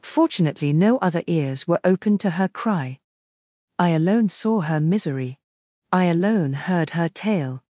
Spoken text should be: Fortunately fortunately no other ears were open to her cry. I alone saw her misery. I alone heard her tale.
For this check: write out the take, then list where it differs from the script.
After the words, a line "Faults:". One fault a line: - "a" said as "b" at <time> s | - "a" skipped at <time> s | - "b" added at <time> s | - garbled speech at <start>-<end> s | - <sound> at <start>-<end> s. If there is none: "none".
Fortunately no other ears were open to her cry. I alone saw her misery. I alone heard her tale.
Faults:
- "fortunately" skipped at 0.7 s